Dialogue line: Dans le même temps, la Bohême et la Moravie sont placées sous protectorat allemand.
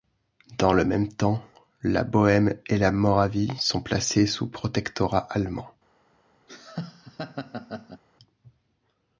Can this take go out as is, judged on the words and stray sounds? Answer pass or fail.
fail